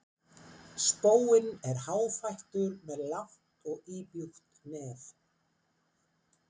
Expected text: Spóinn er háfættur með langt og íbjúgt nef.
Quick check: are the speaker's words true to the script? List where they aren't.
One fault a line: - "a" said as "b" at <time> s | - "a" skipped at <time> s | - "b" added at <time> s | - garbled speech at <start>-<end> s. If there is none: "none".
none